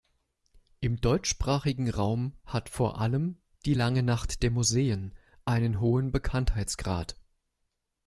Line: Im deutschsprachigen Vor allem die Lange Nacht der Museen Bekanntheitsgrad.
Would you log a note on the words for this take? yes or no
yes